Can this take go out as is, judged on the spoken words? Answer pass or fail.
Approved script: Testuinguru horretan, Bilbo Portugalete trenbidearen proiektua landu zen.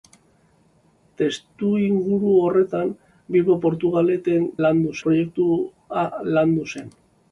fail